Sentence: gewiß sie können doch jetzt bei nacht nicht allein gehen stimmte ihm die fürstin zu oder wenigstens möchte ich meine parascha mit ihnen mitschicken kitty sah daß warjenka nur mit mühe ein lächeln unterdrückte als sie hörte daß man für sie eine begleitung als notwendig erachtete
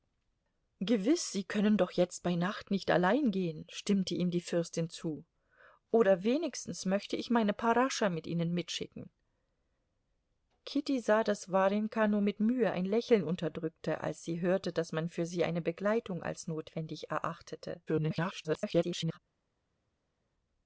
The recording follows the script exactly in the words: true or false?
false